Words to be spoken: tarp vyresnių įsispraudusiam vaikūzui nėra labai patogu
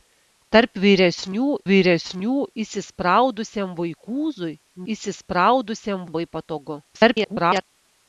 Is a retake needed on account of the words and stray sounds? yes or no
yes